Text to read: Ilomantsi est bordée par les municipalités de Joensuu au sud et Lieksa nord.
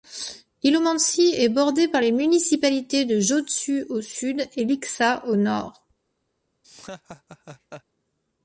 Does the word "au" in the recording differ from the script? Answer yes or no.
no